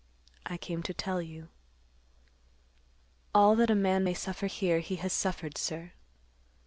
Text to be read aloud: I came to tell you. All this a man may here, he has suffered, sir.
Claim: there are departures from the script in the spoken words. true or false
true